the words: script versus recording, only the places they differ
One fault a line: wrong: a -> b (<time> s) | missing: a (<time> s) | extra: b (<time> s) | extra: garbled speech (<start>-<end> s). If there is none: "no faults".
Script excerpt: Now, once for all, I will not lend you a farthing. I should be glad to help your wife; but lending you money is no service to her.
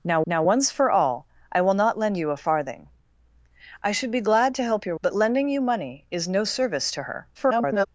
extra: now (0.2 s)
missing: wife (5.0 s)
extra: garbled speech (7.3-7.9 s)